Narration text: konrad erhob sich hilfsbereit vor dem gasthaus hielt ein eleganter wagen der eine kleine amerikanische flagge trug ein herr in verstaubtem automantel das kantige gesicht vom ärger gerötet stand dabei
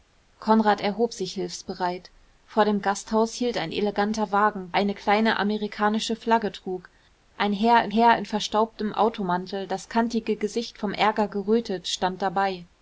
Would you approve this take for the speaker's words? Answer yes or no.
no